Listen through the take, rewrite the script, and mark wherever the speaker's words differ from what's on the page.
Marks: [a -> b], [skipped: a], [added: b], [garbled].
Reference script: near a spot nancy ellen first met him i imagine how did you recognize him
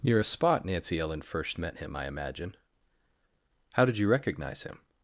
near a spot nancy ellen first met him i imagine how did you recognize him